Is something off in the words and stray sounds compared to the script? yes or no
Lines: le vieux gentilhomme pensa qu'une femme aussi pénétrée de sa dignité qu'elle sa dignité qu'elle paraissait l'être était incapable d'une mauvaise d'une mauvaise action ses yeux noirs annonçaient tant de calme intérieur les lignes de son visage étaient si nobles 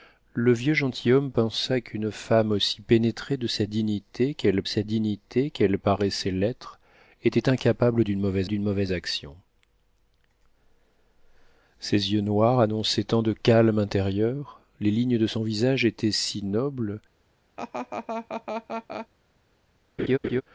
yes